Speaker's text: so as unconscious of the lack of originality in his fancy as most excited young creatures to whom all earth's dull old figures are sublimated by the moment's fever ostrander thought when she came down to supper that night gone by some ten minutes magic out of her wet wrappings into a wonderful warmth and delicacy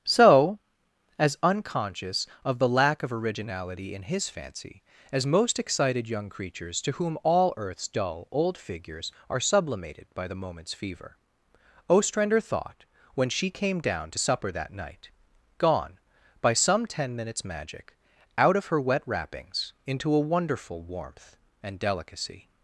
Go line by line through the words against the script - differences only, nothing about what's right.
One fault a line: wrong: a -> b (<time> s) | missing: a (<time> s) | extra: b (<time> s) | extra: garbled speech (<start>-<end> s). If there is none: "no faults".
no faults